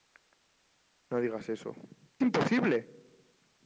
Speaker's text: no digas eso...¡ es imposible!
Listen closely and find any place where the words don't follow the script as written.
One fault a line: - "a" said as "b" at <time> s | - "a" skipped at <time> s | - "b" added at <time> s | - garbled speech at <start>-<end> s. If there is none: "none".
- "es" skipped at 1.8 s